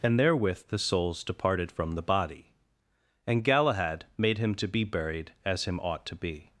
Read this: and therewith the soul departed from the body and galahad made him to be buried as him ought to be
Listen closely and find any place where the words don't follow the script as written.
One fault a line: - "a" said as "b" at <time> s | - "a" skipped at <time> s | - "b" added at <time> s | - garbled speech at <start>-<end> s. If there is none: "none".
- "soul" said as "souls" at 0.8 s